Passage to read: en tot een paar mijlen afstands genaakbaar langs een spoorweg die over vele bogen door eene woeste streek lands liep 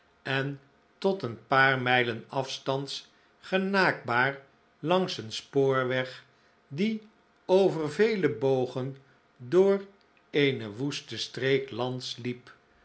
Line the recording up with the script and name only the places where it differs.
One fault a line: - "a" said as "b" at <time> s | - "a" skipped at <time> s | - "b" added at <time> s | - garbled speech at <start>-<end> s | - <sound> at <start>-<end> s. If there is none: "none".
none